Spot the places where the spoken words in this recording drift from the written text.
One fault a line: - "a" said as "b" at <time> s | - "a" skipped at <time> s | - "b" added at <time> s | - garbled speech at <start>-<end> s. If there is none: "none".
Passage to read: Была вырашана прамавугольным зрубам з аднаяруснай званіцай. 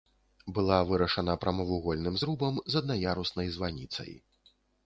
none